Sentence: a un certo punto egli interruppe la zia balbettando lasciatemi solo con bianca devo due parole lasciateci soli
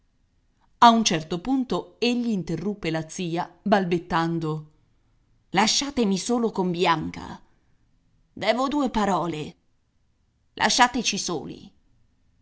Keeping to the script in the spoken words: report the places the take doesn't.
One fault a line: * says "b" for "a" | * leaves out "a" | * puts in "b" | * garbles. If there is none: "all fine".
all fine